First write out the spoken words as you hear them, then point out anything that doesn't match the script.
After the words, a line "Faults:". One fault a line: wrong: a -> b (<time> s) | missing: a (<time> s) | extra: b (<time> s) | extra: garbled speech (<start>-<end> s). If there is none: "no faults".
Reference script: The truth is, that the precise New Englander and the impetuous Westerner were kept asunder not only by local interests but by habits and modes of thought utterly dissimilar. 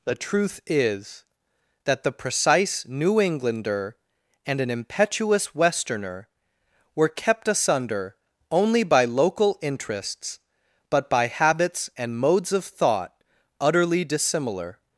The truth is, that the precise New Englander and an impetuous Westerner were kept asunder only by local interests but by habits and modes of thought utterly dissimilar.
Faults:
wrong: the -> an (4.6 s)
missing: not (8.2 s)